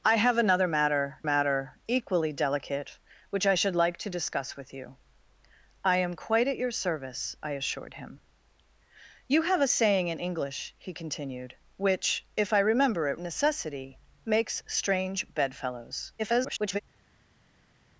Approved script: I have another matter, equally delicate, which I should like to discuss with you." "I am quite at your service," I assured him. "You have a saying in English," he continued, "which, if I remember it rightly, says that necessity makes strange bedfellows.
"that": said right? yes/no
no